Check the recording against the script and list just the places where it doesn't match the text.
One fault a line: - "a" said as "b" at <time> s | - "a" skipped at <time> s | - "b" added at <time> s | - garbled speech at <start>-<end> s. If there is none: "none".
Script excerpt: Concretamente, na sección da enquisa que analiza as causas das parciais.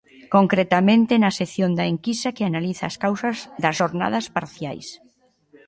- "xornadas" added at 3.8 s